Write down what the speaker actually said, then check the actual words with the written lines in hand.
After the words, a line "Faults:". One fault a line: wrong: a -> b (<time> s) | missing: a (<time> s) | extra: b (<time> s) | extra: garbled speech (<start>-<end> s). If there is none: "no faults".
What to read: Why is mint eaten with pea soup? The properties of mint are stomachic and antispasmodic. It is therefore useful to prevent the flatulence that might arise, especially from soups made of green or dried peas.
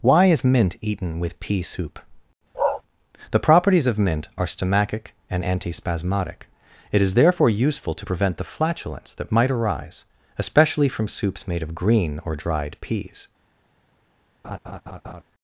Why is mint eaten with pea soup? The properties of mint are stomachic and antispasmodic. It is therefore useful to prevent the flatulence that might arise, especially from soups made of green or dried peas.
Faults:
no faults